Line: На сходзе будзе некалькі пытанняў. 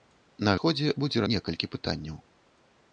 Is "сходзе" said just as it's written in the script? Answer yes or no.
yes